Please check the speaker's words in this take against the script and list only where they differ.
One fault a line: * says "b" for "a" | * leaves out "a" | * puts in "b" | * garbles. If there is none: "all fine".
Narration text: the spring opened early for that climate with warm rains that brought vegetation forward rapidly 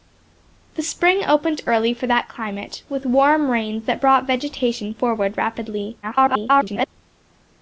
* garbles